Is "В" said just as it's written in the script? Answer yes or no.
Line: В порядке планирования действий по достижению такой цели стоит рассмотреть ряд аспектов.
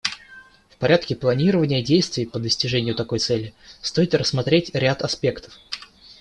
yes